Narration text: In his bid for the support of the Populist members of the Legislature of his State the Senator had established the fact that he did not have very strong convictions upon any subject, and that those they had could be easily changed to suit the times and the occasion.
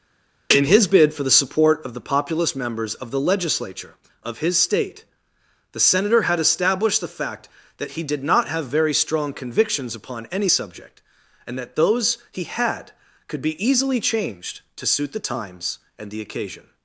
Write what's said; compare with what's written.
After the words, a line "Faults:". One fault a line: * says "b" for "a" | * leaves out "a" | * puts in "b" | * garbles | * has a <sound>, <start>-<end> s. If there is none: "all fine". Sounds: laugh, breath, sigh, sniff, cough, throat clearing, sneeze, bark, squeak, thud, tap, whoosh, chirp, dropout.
In his bid for the support of the Populist members of the Legislature of his State the Senator had established the fact that he did not have very strong convictions upon any subject, and that those he had could be easily changed to suit the times and the occasion.
Faults:
* says "he" for "they"